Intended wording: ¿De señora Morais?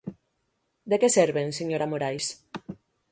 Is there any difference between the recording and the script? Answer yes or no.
yes